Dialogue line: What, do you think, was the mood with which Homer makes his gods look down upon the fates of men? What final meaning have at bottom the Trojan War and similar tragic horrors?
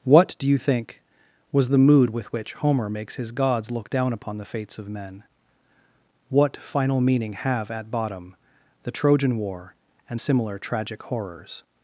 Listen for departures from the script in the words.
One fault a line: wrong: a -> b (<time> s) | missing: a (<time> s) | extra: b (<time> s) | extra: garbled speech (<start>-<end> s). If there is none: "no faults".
no faults